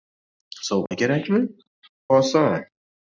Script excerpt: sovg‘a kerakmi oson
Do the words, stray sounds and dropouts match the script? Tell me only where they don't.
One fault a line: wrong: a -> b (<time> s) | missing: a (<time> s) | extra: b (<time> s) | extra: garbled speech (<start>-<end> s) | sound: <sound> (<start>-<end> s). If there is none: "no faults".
sound: dropout (0.9-0.9 s)